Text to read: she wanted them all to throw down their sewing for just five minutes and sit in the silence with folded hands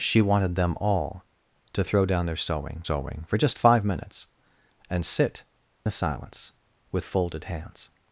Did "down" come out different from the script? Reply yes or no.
no